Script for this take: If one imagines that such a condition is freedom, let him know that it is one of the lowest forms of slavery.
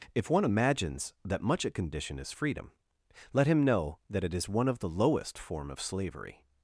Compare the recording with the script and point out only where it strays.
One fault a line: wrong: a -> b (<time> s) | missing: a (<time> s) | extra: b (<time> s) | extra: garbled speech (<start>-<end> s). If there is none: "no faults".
wrong: such -> much (1.4 s)
wrong: forms -> form (5.4 s)